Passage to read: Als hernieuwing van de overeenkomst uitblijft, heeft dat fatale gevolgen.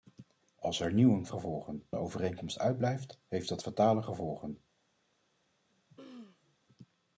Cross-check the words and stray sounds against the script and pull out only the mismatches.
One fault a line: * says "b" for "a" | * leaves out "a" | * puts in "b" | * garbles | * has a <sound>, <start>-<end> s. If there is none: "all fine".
* says "gevolgen" for "van"
* has a throat clearing, 5.7-6.6 s